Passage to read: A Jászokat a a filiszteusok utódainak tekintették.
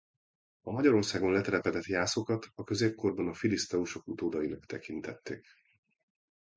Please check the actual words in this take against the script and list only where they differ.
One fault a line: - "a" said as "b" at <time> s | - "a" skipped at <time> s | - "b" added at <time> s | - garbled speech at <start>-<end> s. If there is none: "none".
- "Magyarországon letelepedett" added at 0.7 s
- "középkorban" added at 2.6 s